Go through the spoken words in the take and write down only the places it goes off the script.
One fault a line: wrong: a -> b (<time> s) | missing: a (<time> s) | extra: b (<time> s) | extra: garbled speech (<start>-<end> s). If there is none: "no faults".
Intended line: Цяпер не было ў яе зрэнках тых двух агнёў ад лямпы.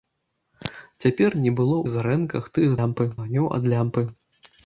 missing: ў (1.8 s)
wrong: двух -> лямпы (2.8 s)